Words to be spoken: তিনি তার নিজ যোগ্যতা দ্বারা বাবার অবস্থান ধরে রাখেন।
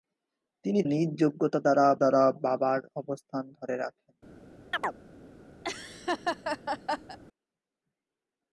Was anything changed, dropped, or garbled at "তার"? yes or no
yes